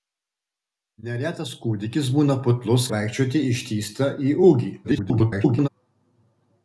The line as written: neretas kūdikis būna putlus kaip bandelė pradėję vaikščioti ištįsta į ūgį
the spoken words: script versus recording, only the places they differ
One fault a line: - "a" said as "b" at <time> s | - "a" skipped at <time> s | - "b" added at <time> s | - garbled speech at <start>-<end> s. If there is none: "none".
- "kaip bandelė pradėję" skipped at 2.9 s
- garbled speech at 4.8-5.7 s